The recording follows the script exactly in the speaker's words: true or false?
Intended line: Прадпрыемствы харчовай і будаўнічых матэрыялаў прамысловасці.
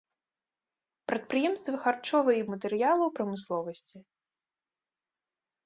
false